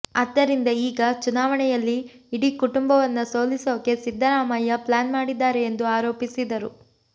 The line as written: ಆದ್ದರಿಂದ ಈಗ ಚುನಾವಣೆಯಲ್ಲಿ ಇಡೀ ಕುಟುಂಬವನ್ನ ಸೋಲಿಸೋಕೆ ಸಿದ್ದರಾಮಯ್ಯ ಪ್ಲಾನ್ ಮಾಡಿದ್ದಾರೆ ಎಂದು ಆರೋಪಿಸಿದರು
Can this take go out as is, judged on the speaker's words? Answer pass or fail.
pass